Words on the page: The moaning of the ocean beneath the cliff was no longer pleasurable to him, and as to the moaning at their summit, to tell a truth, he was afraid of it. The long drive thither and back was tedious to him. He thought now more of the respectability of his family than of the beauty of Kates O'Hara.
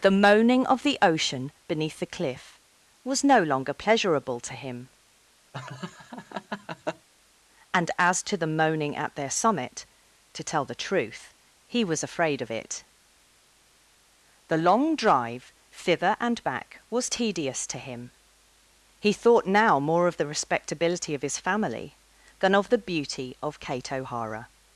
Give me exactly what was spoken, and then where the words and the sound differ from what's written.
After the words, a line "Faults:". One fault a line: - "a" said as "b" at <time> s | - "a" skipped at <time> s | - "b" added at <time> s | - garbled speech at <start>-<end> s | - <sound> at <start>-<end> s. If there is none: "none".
The moaning of the ocean beneath the cliff was no longer pleasurable to him, and as to the moaning at their summit, to tell the truth, he was afraid of it. The long drive thither and back was tedious to him. He thought now more of the respectability of his family than of the beauty of Kate O'Hara.
Faults:
- laugh at 5.5-7.1 s
- "a" said as "the" at 10.6 s
- "Kates" said as "Kate" at 23.6 s